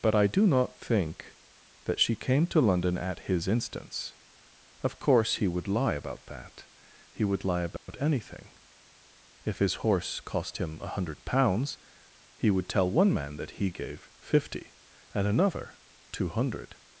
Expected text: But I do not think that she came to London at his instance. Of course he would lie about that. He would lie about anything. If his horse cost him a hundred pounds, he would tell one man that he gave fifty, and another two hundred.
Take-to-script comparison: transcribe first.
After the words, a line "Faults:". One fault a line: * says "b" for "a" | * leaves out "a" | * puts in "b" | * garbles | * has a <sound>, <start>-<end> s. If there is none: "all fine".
But I do not think that she came to London at his instance. Of course he would lie about that. He would lie about anything. If his horse cost him a hundred pounds, he would tell one man that he gave fifty, and another two hundred.
Faults:
* has a dropout, 7.8-7.9 s